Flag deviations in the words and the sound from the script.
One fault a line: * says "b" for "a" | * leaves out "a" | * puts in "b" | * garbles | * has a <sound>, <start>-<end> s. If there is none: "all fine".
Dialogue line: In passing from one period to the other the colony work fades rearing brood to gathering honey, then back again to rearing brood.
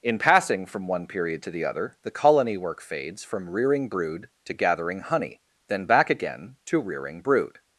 * puts in "from"